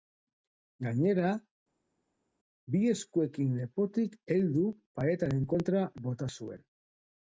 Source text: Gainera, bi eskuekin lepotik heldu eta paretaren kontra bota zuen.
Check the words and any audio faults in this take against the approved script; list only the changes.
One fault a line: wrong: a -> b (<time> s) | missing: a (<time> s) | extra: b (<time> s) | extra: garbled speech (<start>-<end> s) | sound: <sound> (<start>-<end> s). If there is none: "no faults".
missing: eta (4.6 s)